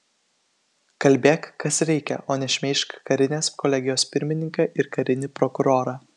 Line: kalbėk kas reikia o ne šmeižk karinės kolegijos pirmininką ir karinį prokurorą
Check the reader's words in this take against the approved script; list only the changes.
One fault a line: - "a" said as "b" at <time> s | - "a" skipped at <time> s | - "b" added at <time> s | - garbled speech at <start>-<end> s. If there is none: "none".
none